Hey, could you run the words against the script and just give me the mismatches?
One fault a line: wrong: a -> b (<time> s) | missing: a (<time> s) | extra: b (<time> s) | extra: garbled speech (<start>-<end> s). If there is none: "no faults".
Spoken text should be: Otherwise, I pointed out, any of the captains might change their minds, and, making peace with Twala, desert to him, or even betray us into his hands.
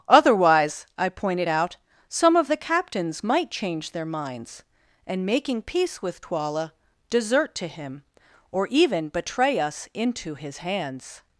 wrong: any -> some (2.1 s)